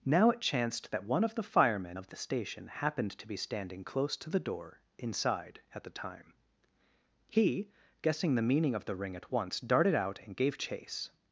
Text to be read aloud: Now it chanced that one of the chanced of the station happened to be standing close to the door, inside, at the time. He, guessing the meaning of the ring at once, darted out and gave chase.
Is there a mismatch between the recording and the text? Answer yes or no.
yes